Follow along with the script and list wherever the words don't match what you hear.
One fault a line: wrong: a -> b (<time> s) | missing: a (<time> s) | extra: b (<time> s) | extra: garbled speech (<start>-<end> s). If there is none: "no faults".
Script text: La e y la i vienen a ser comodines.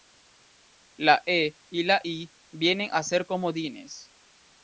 no faults